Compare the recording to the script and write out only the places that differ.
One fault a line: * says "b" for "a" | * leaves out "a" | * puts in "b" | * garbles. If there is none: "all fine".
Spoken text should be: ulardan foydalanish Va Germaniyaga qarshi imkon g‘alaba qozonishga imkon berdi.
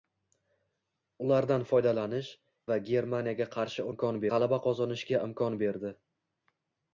all fine